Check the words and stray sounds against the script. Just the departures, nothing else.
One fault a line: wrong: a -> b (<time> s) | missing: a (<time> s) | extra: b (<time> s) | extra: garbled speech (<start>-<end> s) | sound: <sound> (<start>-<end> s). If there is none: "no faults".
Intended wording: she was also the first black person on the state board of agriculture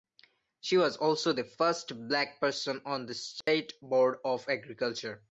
sound: dropout (3.4-3.5 s)